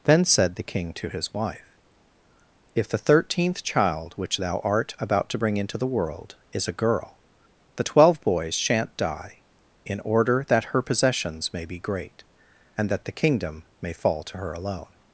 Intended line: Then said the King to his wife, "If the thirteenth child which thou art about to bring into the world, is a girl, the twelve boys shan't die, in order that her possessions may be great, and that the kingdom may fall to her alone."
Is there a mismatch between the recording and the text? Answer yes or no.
no